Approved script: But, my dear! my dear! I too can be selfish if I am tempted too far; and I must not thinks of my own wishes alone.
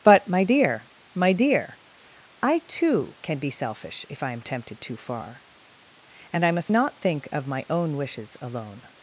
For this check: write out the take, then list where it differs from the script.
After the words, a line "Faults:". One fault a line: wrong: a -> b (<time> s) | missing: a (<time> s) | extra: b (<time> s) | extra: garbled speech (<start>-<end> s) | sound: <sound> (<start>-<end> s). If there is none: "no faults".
But, my dear! my dear! I too can be selfish if I am tempted too far; and I must not think of my own wishes alone.
Faults:
wrong: thinks -> think (7.0 s)